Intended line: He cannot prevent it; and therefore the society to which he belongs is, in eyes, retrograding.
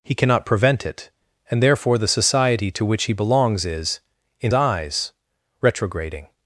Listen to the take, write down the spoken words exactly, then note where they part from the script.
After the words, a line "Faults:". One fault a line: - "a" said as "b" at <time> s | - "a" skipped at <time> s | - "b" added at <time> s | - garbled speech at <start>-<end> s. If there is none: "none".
He cannot prevent it; and therefore the society to which he belongs is, in eyes, retrograding.
Faults:
none